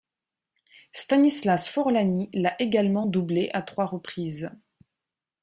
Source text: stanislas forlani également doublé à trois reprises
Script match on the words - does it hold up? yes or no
no